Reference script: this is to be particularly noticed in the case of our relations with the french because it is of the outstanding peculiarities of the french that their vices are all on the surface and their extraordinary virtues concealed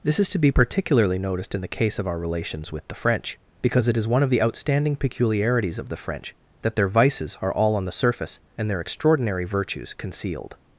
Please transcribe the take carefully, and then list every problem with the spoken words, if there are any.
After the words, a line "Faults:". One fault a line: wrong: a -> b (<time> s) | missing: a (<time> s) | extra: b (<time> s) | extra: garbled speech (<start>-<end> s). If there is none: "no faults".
this is to be particularly noticed in the case of our relations with the french because it is one of the outstanding peculiarities of the french that their vices are all on the surface and their extraordinary virtues concealed
Faults:
extra: one (4.1 s)